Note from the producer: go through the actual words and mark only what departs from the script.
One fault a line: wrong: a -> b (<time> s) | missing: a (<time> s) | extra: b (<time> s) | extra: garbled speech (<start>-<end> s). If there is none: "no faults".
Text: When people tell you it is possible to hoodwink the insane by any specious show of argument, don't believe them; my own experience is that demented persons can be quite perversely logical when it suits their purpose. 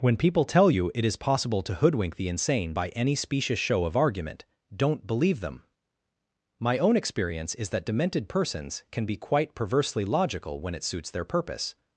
no faults